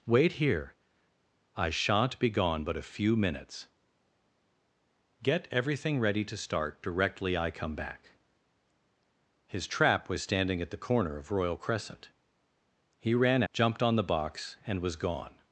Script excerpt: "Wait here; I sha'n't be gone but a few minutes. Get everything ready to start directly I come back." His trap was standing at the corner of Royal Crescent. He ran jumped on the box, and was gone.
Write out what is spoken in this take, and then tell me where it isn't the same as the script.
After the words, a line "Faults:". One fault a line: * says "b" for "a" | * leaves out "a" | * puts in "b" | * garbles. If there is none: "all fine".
"Wait here; I sha'n't be gone but a few minutes. Get everything ready to start directly I come back." His trap was standing at the corner of Royal Crescent. He ran jumped on the box, and was gone.
Faults:
all fine